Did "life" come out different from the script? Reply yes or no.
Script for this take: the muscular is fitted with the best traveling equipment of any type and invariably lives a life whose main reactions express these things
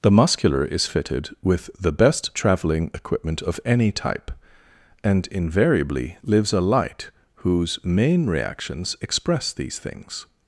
yes